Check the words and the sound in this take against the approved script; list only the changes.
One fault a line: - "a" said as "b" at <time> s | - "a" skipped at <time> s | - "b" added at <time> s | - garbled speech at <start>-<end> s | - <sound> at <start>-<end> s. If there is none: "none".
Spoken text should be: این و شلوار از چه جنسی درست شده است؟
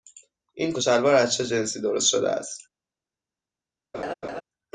- laugh at 3.9-4.4 s